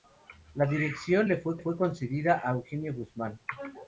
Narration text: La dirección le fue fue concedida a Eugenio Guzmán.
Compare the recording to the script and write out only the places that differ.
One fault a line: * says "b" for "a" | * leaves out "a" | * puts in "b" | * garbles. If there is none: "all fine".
all fine